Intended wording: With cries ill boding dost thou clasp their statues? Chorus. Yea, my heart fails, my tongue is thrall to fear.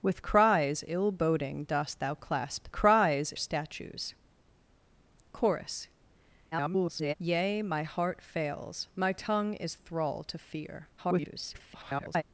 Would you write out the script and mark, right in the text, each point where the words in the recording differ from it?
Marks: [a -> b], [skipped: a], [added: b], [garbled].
With cries ill boding dost thou clasp [their -> cries] statues? Chorus. [garbled] Yea, my heart fails, my tongue is thrall to fear. [garbled]